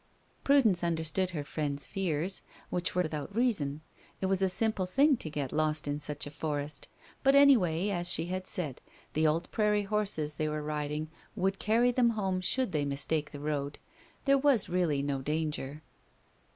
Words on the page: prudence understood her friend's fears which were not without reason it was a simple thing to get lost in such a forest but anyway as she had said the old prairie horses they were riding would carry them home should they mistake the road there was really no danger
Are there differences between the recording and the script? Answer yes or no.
yes